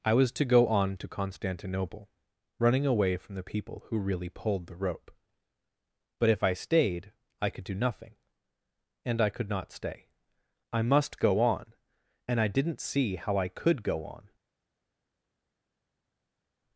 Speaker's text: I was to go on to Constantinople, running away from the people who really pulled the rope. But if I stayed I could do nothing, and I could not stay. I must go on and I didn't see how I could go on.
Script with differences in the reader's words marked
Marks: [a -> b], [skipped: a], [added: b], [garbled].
I was to go on to Constantinople, running away from the people who really pulled the rope. But if I stayed I could do nothing, and I could not stay. I must go on and I didn't see how I could go on.